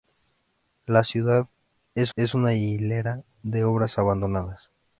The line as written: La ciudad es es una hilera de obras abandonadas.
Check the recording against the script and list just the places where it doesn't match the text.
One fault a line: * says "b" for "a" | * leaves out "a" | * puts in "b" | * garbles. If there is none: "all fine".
all fine